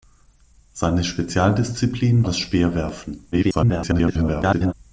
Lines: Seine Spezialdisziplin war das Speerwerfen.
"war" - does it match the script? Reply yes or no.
no